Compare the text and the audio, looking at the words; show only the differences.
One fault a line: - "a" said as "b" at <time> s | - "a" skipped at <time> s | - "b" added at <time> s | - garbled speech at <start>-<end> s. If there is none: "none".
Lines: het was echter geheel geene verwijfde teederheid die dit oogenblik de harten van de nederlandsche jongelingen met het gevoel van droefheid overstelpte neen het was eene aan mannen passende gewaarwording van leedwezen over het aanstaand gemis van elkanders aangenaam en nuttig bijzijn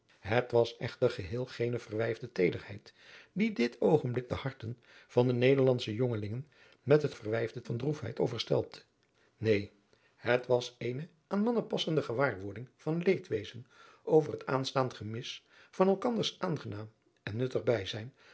- "gevoel" said as "verwijfde" at 7.1 s